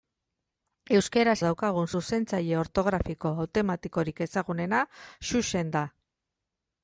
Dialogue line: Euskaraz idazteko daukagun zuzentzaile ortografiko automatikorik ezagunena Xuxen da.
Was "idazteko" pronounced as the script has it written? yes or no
no